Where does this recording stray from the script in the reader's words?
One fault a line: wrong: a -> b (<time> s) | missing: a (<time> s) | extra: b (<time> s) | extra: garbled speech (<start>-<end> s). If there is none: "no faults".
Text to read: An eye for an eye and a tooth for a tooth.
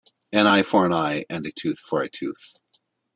no faults